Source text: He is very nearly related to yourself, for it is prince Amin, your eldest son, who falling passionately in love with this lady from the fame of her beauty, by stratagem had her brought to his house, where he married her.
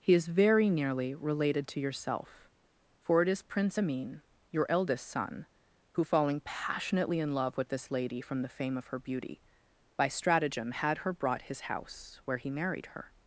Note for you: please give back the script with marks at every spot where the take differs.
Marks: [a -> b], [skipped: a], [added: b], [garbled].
He is very nearly related to yourself, for it is prince Amin, your eldest son, who falling passionately in love with this lady from the fame of her beauty, by stratagem had her brought [skipped: to] his house, where he married her.